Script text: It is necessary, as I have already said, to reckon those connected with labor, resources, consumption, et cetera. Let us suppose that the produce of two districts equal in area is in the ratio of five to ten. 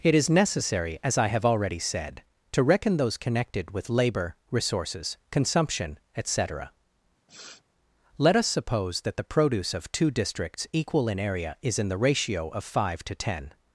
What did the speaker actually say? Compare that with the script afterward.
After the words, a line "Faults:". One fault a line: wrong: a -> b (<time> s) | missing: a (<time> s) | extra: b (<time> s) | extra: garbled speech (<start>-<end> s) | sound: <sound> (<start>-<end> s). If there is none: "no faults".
It is necessary, as I have already said, to reckon those connected with labor, resources, consumption, et cetera. Let us suppose that the produce of two districts equal in area is in the ratio of five to ten.
Faults:
sound: sniff (7.3-7.6 s)